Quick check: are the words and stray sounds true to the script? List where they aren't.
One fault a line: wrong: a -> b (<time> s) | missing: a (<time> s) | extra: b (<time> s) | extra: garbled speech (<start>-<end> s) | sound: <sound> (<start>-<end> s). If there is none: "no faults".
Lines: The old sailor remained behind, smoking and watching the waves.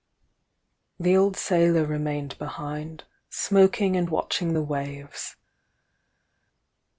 no faults